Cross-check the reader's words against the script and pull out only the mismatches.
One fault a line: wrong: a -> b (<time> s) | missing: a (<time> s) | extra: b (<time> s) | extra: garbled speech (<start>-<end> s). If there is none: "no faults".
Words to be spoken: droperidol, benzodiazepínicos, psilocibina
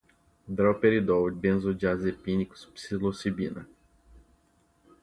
no faults